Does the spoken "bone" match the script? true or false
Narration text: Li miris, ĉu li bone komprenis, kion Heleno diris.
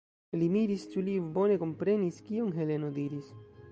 true